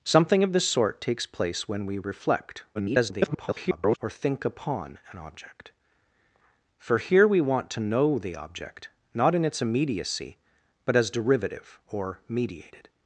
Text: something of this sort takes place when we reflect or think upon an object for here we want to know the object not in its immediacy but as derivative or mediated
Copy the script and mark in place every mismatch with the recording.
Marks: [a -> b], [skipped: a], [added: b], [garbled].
something of this sort takes place when we reflect [garbled] or think upon an object for here we want to know the object not in its immediacy but as derivative or mediated